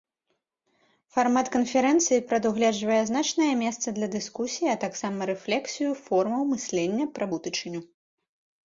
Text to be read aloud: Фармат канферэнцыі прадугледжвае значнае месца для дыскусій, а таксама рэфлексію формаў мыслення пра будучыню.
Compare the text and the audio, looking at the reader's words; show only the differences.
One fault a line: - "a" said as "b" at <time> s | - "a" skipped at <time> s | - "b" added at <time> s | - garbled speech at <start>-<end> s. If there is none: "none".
none